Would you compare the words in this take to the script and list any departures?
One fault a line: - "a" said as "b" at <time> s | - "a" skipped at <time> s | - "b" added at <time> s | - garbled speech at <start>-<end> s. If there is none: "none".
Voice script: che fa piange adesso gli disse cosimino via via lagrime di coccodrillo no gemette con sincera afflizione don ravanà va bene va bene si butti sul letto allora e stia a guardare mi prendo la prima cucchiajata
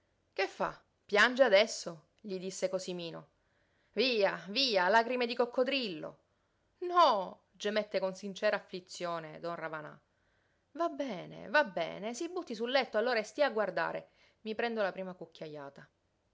none